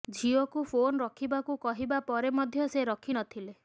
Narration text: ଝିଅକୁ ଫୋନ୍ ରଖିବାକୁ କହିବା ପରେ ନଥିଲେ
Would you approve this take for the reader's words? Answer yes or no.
no